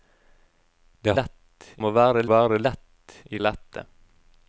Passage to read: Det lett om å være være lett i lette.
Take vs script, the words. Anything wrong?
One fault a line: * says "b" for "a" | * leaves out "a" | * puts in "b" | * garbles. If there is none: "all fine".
all fine